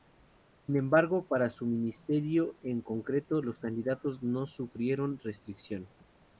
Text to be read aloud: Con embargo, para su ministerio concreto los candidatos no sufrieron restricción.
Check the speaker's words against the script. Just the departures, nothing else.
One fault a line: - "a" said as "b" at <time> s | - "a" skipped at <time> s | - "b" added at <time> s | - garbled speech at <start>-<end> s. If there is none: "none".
- "Con" said as "Sin" at 0.7 s
- "en" added at 2.6 s